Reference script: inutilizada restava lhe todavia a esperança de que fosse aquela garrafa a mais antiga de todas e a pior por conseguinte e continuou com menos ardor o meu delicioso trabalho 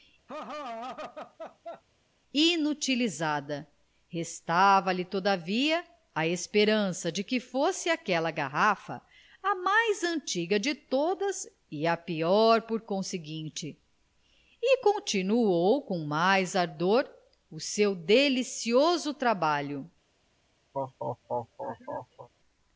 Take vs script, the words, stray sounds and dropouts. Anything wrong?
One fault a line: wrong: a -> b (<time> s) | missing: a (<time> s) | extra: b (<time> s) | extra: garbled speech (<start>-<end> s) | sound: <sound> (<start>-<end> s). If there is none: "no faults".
sound: laugh (0.3-1.8 s)
wrong: menos -> mais (16.0 s)
wrong: meu -> seu (17.6 s)
sound: laugh (20.7-22.3 s)